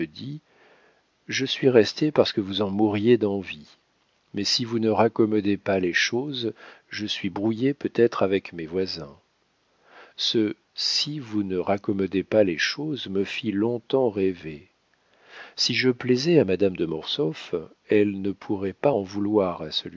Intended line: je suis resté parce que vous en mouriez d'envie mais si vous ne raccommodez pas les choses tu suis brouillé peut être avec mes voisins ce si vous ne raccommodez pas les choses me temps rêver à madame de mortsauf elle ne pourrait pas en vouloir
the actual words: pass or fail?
fail